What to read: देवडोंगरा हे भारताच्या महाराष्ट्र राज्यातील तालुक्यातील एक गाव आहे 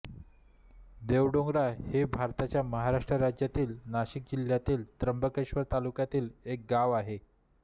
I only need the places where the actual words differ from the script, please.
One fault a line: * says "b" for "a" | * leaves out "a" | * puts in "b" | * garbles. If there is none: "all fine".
* puts in "नाशिक जिल्ह्यातील त्र्यंबकेश्वर"